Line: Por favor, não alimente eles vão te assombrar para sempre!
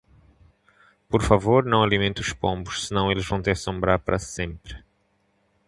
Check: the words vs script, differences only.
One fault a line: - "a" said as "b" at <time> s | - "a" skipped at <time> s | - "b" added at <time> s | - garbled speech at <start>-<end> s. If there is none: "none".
- "os pombos senão" added at 2.2 s